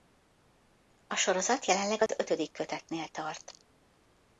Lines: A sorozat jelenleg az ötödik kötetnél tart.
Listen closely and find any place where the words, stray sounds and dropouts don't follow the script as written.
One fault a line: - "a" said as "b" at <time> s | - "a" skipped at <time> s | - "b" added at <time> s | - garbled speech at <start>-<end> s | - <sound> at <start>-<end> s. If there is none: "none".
- dropout at 2.1-2.1 s